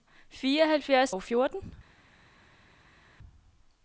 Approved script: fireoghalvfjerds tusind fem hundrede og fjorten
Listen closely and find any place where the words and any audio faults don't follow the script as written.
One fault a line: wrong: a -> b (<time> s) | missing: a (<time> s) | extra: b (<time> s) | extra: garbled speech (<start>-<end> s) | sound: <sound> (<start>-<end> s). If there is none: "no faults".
missing: tusind fem hundrede (1.1 s)